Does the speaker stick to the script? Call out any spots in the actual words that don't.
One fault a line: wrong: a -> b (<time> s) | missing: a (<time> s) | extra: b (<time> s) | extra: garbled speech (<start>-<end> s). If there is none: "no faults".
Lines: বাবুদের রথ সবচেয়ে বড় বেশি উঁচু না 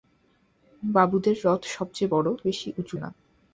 no faults